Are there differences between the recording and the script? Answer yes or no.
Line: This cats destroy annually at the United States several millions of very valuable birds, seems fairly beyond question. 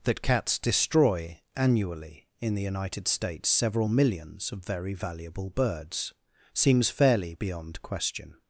yes